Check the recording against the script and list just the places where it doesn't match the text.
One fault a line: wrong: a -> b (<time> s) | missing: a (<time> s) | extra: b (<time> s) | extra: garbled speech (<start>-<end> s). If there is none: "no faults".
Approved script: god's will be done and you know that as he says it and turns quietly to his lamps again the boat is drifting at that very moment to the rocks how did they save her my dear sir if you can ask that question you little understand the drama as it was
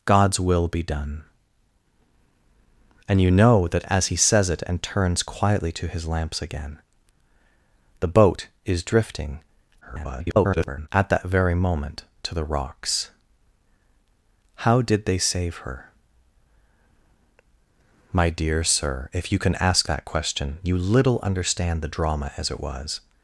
extra: garbled speech (9.8-10.9 s)